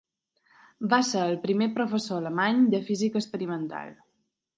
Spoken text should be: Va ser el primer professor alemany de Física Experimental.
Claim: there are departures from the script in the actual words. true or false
false